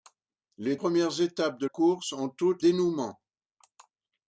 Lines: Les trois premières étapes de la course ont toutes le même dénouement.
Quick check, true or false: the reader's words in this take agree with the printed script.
false